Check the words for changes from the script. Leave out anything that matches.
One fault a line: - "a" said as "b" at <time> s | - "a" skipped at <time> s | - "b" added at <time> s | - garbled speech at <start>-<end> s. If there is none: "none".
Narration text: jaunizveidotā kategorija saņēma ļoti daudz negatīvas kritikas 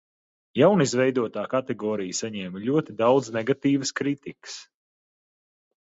none